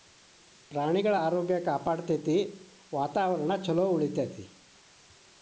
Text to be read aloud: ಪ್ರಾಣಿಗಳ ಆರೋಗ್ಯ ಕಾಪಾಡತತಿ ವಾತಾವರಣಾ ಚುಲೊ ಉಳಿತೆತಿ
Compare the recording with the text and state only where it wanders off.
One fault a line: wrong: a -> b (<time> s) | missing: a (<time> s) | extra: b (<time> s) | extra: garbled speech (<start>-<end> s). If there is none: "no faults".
no faults